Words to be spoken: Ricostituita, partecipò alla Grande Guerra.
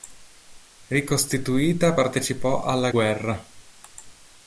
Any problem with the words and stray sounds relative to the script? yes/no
yes